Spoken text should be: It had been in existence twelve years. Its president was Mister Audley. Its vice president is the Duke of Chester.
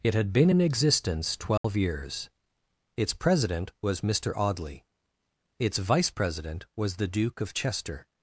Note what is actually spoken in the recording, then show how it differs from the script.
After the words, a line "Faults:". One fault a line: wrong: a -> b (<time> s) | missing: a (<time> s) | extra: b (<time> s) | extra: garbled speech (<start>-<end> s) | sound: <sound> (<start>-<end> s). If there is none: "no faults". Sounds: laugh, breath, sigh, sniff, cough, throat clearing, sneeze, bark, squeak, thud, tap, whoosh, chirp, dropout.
It had been in existence twelve years. Its president was Mister Audley. Its vice president was the Duke of Chester.
Faults:
sound: dropout (1.6-1.6 s)
wrong: is -> was (6.8 s)